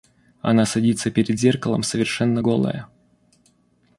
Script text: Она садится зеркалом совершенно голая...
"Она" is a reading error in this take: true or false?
false